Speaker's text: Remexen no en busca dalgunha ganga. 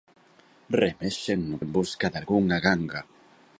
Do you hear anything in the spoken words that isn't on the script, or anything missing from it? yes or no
no